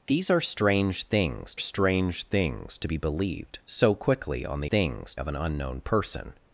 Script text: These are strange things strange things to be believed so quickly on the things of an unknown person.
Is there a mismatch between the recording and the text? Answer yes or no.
no